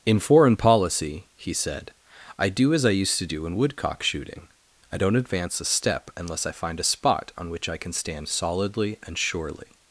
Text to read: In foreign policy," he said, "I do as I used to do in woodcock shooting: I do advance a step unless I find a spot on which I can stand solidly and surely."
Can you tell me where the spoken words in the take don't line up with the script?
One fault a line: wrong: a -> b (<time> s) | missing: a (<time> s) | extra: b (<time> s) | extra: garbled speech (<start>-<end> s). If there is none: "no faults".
wrong: do -> don't (5.0 s)